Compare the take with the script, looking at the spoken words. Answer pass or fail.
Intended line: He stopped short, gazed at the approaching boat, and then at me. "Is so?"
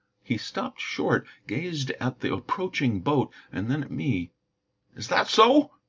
fail